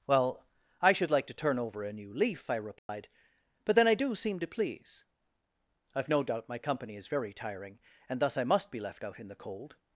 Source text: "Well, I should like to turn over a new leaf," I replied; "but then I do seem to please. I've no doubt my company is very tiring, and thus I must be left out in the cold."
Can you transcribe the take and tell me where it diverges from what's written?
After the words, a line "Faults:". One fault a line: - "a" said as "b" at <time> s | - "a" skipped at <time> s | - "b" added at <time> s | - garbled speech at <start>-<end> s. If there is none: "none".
"Well, I should like to turn over a new leaf," I replied; "but then I do seem to please. I've no doubt my company is very tiring, and thus I must be left out in the cold."
Faults:
none